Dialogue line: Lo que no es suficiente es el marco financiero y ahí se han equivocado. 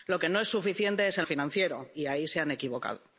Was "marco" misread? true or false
true